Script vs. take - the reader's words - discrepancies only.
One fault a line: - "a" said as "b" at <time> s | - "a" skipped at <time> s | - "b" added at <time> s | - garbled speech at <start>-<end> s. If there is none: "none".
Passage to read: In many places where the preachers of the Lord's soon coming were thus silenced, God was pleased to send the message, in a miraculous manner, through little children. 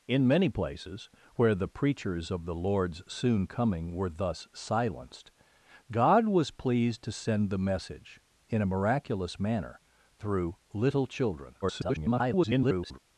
- garbled speech at 11.6-13.0 s